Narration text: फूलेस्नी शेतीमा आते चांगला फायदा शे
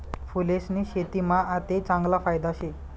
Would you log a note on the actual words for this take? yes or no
no